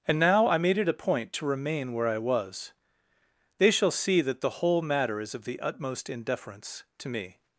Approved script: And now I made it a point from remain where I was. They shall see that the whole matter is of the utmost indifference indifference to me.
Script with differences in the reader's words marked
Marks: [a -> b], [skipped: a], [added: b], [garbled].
And now I made it a point [from -> to] remain where I was. They shall see that the whole matter is of the utmost indifference [skipped: indifference] to me.